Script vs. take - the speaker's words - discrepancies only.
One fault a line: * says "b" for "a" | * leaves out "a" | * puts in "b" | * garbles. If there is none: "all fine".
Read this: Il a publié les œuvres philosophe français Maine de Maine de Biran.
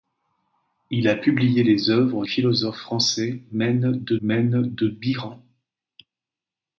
all fine